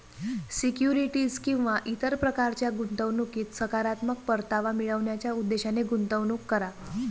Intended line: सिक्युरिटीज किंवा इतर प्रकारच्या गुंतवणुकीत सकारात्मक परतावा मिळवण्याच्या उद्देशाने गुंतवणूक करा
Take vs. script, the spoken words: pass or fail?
pass